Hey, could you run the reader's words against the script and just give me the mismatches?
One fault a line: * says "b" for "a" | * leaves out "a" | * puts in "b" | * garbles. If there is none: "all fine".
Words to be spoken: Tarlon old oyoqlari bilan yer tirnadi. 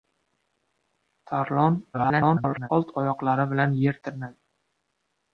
* garbles